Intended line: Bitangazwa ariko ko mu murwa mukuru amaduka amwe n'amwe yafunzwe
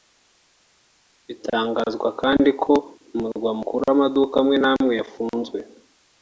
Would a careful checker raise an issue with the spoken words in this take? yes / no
yes